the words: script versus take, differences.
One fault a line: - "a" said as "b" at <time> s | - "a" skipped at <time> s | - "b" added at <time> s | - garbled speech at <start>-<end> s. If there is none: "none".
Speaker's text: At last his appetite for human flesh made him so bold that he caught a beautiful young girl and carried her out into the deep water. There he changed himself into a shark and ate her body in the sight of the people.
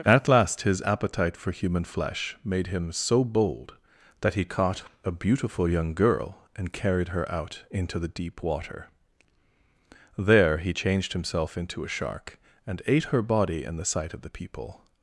none